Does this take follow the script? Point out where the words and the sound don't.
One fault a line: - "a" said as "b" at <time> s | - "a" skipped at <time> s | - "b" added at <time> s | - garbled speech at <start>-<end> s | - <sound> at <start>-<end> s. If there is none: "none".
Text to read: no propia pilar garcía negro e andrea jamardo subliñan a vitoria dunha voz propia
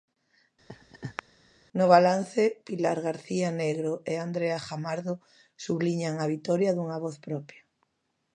- laugh at 0.7-1.2 s
- "propia" said as "balance" at 2.0 s